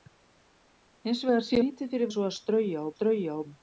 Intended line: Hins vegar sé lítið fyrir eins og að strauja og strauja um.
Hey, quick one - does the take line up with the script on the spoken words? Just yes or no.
yes